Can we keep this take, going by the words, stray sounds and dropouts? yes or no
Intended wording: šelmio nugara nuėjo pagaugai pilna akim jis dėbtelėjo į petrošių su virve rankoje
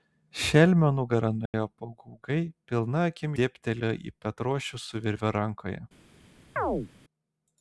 no